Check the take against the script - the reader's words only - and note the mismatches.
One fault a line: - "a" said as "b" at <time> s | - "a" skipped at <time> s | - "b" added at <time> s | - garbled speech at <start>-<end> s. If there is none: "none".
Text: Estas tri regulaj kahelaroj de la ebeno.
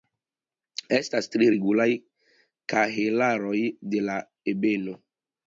none